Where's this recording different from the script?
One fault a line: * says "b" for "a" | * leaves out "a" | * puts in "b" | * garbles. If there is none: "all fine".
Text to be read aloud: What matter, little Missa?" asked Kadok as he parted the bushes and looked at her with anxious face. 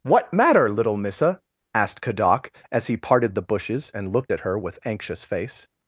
all fine